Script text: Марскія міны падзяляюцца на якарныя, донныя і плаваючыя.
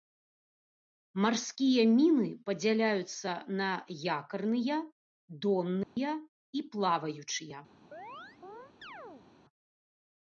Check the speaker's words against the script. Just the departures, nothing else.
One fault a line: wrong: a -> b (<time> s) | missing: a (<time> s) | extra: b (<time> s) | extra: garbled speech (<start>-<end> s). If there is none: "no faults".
no faults